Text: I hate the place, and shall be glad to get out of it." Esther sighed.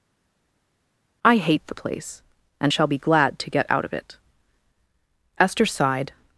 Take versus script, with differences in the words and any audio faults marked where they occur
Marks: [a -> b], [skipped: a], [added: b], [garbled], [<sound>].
I hate the place, and shall be glad to get out of it." Esther sighed.